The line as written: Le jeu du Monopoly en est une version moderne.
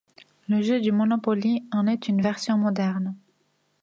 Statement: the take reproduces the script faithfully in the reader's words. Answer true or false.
true